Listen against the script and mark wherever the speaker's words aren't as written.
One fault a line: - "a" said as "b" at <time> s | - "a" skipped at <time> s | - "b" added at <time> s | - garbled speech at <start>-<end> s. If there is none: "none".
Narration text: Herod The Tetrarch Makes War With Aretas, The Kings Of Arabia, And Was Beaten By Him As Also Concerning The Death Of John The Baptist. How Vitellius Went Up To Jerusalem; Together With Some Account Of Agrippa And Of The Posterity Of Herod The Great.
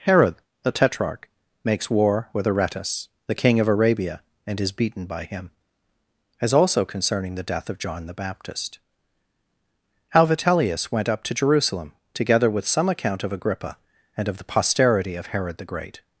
- "Kings" said as "King" at 3.4 s
- "Was" said as "Is" at 4.6 s